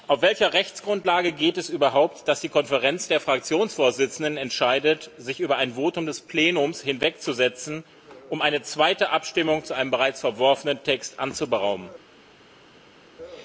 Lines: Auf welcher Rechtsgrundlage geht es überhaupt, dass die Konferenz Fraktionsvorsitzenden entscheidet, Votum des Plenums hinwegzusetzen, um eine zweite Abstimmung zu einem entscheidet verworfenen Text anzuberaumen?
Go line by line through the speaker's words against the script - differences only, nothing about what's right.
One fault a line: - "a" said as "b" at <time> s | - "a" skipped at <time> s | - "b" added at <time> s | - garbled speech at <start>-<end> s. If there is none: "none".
- "der" added at 3.1 s
- "sich über ein" added at 5.2 s
- "entscheidet" said as "bereits" at 9.9 s